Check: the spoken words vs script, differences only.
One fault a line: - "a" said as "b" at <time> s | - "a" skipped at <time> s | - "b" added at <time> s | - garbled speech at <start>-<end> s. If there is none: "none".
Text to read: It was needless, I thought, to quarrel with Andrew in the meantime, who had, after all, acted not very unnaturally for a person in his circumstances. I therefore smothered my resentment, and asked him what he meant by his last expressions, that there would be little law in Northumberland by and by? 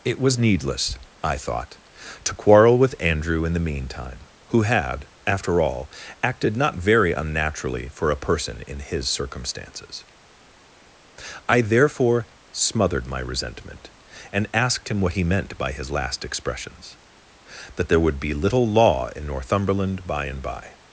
none